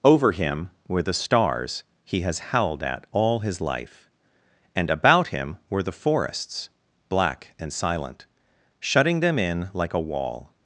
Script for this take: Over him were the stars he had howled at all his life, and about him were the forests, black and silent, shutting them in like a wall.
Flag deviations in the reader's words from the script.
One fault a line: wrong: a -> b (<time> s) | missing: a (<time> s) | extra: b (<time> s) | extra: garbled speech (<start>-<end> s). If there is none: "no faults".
wrong: had -> has (2.2 s)